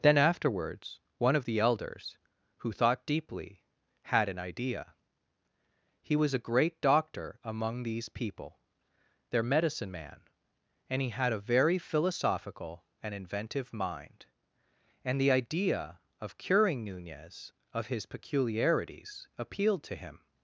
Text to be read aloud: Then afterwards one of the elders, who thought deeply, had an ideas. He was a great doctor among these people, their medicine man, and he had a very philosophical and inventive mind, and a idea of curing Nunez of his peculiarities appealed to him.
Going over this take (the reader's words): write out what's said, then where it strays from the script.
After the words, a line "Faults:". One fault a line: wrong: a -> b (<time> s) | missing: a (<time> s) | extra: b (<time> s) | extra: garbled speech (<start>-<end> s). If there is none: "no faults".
Then afterwards one of the elders, who thought deeply, had an idea. He was a great doctor among these people, their medicine man, and he had a very philosophical and inventive mind, and the idea of curing Nunez of his peculiarities appealed to him.
Faults:
wrong: ideas -> idea (4.4 s)
wrong: a -> the (15.2 s)